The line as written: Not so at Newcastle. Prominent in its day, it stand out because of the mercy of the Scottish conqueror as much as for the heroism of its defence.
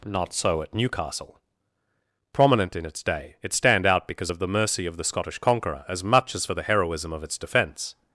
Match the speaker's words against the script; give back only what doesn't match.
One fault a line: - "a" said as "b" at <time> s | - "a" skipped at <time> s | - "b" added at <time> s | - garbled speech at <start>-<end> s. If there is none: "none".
none